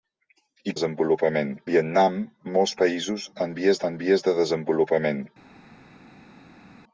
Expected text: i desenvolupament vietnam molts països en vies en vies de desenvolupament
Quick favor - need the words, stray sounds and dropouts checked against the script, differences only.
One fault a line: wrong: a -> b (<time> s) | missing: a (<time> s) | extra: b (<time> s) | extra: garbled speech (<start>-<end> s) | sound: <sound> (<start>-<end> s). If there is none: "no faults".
no faults